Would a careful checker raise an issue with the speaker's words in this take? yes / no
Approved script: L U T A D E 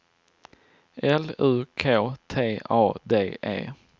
yes